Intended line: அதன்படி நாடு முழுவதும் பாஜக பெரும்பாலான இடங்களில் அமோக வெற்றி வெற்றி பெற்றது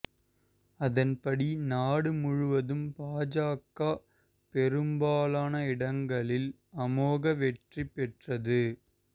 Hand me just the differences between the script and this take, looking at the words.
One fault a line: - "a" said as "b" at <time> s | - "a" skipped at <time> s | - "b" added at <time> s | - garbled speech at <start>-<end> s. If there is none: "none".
- "வெற்றி" skipped at 7.9 s